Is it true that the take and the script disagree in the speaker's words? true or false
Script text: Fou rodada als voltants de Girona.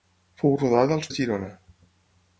true